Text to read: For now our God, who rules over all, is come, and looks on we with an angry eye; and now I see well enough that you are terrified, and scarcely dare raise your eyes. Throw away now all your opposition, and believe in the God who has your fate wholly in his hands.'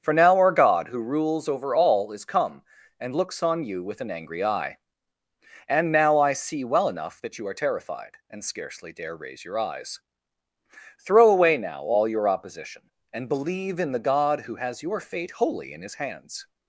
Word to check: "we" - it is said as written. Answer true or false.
false